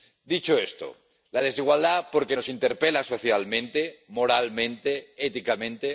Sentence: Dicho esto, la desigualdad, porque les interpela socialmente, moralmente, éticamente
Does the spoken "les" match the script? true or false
false